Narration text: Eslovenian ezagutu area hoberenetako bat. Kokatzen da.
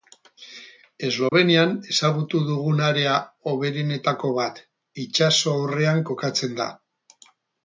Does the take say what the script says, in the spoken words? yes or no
no